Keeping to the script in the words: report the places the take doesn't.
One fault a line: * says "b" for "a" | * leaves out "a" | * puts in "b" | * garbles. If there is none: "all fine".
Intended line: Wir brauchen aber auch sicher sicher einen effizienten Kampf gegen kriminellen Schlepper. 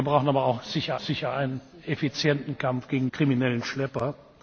all fine